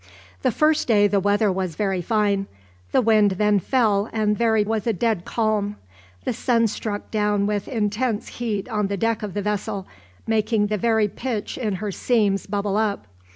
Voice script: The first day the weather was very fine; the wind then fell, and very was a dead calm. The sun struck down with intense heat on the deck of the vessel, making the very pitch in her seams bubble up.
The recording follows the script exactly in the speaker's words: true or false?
true